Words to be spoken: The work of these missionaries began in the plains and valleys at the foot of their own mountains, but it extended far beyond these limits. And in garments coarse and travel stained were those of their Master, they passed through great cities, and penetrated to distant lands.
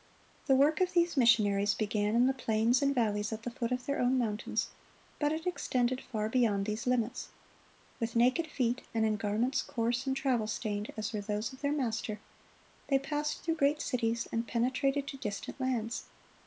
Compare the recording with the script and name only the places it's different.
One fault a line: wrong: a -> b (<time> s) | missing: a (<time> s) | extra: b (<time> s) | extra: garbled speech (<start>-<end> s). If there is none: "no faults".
extra: With naked feet (8.0 s)
extra: as (11.0 s)